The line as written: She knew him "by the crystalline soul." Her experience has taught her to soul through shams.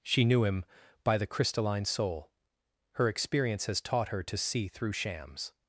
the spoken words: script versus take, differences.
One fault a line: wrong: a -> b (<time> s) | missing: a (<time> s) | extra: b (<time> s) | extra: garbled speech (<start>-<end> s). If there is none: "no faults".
wrong: soul -> see (4.4 s)